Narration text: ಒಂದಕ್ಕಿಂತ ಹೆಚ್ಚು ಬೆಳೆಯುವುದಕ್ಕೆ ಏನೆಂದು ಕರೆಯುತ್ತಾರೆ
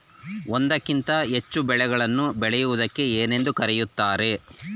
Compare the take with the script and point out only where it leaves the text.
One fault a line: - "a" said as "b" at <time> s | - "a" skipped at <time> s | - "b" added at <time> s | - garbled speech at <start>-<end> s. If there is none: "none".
- "ಬೆಳೆಗಳನ್ನು" added at 1.6 s